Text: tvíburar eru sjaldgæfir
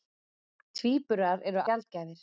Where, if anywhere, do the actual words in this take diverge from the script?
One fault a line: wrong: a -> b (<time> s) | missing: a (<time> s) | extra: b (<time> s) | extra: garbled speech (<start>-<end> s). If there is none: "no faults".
no faults